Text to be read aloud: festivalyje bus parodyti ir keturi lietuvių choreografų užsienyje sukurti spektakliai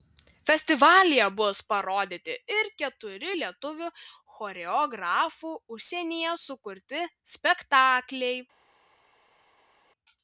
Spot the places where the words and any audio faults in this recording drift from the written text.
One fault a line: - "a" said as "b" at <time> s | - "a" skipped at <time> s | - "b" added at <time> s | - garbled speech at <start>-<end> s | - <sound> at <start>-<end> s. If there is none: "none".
none